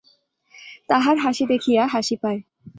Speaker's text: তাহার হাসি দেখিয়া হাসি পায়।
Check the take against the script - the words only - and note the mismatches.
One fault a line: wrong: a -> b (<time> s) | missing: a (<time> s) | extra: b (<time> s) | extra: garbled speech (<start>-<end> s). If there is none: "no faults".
no faults